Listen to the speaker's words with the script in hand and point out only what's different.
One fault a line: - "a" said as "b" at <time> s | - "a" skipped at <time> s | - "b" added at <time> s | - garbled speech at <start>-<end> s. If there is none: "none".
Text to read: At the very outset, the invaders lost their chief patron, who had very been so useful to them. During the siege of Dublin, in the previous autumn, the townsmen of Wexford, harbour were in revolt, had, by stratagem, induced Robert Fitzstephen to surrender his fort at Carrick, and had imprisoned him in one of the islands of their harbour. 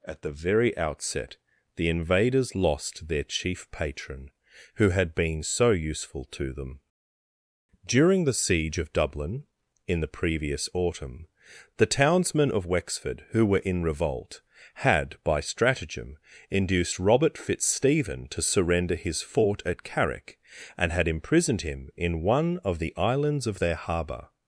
- "very" skipped at 5.1 s
- "harbour" said as "who" at 13.3 s